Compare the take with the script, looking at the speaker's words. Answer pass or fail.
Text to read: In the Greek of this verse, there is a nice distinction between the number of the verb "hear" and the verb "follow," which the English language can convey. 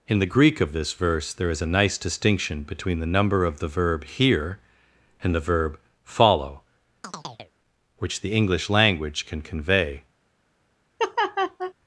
pass